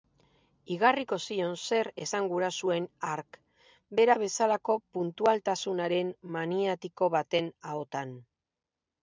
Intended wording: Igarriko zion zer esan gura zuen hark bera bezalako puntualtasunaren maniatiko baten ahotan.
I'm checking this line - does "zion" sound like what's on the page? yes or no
yes